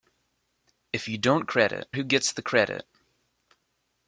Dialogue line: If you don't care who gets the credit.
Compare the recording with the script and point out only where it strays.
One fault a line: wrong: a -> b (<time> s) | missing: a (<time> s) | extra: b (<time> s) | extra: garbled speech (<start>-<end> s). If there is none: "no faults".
wrong: care -> credit (1.4 s)